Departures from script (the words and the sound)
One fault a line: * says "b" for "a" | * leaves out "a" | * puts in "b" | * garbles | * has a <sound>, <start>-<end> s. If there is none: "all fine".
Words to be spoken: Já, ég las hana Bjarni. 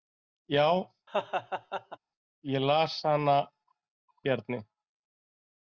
* has a laugh, 1.1-2.0 s